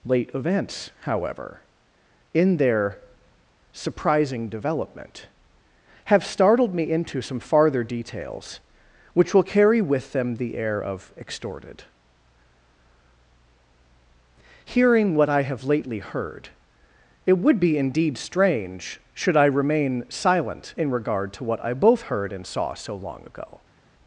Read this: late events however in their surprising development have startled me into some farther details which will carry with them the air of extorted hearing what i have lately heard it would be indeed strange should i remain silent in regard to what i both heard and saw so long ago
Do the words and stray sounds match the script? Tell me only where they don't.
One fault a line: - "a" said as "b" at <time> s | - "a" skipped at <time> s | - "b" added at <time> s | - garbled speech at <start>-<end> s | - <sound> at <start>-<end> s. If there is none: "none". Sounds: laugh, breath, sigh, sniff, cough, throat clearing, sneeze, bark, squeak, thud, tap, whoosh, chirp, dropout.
none